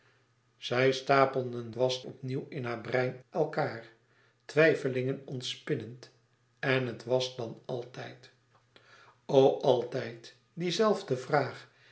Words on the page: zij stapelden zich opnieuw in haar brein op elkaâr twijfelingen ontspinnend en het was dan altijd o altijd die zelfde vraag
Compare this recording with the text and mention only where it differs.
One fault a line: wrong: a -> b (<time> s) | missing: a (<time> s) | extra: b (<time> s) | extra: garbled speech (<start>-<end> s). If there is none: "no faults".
wrong: zich -> was (1.7 s)
missing: op (3.2 s)